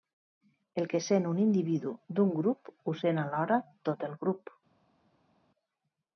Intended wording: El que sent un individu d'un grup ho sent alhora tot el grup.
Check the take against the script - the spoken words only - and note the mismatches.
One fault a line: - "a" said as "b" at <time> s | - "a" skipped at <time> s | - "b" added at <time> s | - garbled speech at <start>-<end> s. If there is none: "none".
none